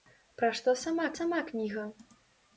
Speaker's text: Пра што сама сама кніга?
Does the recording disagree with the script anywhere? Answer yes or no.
no